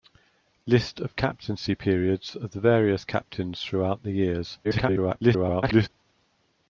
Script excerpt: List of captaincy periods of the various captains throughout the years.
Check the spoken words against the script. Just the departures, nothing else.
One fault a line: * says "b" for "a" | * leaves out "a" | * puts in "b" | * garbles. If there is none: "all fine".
* garbles